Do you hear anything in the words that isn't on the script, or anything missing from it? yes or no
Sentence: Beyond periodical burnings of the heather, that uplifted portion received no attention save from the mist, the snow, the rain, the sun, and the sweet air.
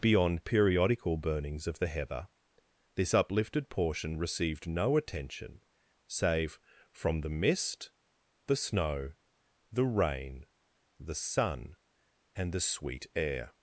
yes